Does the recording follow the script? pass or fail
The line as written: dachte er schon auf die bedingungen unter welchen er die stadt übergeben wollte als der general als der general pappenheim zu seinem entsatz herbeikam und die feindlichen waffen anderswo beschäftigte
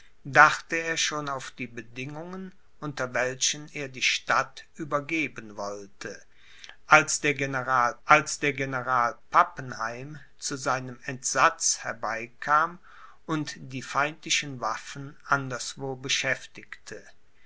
pass